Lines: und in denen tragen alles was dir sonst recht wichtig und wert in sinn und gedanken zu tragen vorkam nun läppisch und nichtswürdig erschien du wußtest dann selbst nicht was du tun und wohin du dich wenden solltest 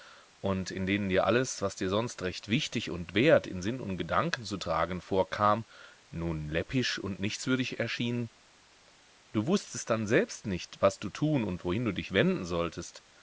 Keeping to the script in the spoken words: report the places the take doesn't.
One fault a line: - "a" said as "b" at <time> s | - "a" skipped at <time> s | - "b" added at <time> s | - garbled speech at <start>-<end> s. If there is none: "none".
- "tragen" said as "dir" at 1.1 s